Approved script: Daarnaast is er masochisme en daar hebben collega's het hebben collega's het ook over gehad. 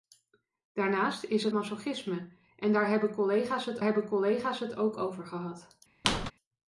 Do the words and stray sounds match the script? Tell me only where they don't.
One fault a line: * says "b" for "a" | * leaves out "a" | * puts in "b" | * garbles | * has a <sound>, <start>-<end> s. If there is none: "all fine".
* has a squeak, 6.0-6.3 s